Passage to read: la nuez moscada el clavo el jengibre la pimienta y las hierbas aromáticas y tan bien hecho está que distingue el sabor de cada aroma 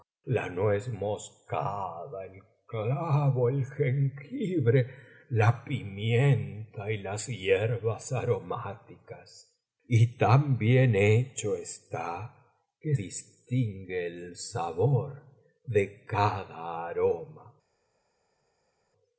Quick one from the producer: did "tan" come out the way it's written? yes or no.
yes